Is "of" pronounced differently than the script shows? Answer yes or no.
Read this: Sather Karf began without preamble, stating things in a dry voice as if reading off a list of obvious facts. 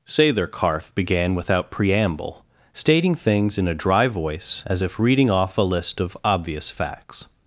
no